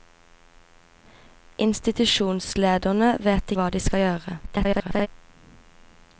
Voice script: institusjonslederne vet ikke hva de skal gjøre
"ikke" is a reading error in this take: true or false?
true